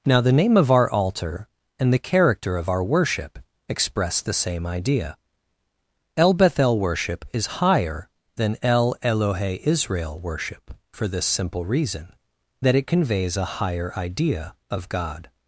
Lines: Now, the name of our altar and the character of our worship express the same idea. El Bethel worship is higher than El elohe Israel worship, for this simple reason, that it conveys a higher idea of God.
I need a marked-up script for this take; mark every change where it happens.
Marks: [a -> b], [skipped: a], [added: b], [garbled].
Now, the name of our altar and the character of our worship express the same idea. El Bethel worship is higher than El elohe Israel worship, for this simple reason, that it conveys a higher idea of God.